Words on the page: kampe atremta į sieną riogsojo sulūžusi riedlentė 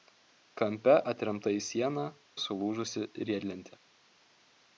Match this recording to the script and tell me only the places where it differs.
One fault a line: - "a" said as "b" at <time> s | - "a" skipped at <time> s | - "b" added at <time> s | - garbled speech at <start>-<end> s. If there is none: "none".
- "riogsojo" skipped at 2.1 s